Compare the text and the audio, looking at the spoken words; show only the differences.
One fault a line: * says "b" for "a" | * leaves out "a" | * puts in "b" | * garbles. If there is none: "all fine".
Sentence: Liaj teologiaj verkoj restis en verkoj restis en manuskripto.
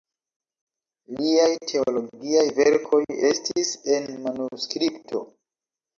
* leaves out "verkoj restis en"